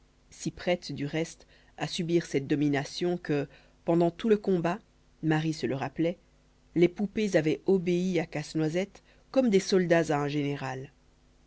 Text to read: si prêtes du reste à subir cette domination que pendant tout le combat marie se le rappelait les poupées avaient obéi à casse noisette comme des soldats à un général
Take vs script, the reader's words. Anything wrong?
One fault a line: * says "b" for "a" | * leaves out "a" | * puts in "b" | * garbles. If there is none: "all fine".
all fine